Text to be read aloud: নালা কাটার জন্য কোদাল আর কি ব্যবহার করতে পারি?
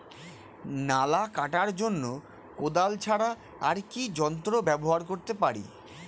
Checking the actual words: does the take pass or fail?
fail